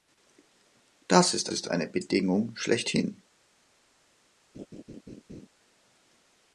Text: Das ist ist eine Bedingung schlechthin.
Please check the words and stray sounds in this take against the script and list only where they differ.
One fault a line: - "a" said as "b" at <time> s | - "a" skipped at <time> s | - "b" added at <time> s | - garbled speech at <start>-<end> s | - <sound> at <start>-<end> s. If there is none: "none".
- laugh at 4.5-5.5 s